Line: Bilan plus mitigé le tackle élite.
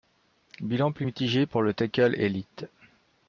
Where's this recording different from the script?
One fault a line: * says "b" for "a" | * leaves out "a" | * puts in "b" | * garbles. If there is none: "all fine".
* puts in "pour"